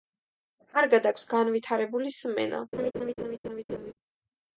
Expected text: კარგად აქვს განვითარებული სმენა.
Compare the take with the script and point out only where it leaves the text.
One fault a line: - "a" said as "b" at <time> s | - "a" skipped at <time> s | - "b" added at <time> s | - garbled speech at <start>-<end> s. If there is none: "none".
none